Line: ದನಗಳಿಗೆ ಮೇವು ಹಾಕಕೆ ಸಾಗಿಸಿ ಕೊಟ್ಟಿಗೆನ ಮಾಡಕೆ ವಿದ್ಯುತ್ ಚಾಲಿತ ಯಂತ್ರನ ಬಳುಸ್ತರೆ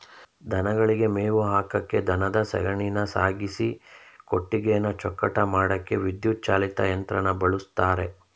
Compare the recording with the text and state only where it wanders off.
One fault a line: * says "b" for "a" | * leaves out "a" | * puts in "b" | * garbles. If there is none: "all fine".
* puts in "ದನದ ಸಗಣಿನ"
* puts in "ಚೊಕ್ಕಟ"